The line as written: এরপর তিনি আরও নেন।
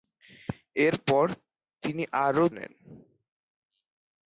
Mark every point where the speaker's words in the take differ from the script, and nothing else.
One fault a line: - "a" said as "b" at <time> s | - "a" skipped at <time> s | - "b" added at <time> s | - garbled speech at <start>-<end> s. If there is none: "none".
none